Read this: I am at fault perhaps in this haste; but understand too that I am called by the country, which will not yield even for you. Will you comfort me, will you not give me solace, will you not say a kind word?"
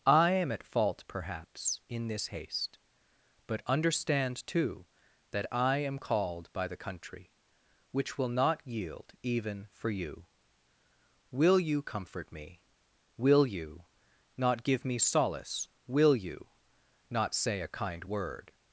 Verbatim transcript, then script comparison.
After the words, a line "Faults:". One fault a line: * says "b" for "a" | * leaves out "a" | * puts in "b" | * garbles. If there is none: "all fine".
I am at fault perhaps in this haste; but understand too that I am called by the country, which will not yield even for you. Will you comfort me, will you not give me solace, will you not say a kind word?"
Faults:
all fine